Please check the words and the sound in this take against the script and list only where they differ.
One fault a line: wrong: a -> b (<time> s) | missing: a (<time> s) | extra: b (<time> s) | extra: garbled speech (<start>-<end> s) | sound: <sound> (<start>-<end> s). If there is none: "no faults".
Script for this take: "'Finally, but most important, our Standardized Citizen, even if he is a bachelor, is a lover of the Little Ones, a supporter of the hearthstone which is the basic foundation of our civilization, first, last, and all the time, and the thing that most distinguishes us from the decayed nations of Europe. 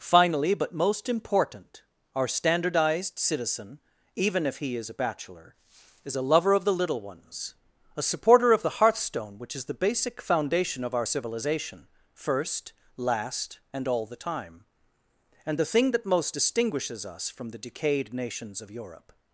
no faults